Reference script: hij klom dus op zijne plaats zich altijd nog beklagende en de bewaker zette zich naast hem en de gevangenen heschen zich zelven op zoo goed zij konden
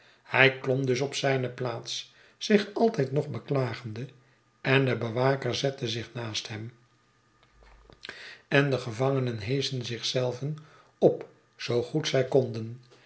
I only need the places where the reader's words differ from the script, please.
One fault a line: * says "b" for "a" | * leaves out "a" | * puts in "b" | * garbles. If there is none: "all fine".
all fine